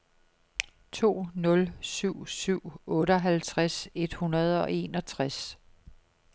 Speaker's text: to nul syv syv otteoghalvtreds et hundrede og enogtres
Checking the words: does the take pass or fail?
pass